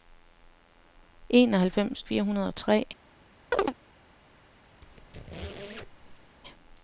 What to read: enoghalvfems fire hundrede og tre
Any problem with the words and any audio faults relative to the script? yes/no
yes